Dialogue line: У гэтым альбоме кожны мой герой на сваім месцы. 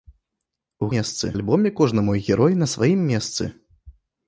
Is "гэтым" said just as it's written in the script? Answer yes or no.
no